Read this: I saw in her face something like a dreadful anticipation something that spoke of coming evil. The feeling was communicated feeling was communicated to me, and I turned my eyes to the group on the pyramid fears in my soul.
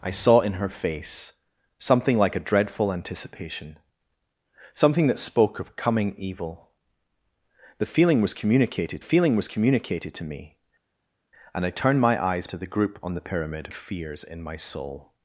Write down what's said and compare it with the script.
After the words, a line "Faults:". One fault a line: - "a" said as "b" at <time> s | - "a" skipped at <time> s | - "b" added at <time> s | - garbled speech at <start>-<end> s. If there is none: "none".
I saw in her face something like a dreadful anticipation something that spoke of coming evil. The feeling was communicated feeling was communicated to me, and I turned my eyes to the group on the pyramid fears in my soul.
Faults:
none